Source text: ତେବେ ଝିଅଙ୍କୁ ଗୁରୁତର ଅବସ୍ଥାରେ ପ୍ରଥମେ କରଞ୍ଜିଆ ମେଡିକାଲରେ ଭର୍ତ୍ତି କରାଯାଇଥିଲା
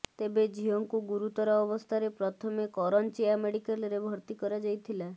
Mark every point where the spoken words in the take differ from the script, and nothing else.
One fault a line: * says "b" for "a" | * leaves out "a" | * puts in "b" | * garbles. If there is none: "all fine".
all fine